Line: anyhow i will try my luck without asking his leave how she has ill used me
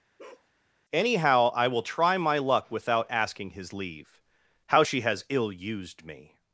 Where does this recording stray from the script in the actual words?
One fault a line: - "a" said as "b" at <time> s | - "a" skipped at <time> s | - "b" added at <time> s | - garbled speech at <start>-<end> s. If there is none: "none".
none